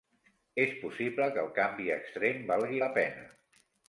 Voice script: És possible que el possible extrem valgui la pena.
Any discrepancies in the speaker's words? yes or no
yes